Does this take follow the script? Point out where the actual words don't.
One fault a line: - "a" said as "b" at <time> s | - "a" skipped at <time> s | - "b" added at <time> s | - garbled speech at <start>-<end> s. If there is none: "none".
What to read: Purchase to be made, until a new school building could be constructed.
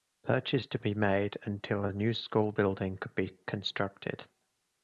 none